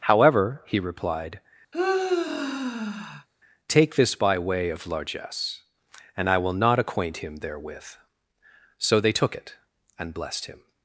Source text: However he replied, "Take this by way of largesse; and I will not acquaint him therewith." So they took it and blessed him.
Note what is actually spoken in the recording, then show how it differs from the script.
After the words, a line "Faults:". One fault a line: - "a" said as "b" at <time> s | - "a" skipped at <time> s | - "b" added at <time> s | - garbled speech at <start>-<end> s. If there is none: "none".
However he replied, "Take this by way of largesse; and I will not acquaint him therewith." So they took it and blessed him.
Faults:
none